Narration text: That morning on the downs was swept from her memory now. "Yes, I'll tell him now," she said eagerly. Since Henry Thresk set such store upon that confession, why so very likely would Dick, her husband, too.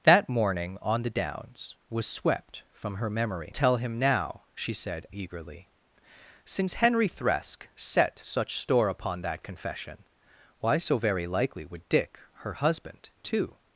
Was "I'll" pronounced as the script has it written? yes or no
no